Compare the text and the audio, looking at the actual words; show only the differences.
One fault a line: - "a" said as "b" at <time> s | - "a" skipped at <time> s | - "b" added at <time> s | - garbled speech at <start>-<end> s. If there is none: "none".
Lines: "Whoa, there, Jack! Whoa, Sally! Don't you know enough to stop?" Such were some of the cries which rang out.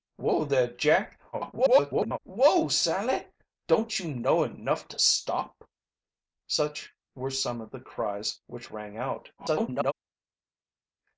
- garbled speech at 1.3-2.2 s
- garbled speech at 9.4-9.9 s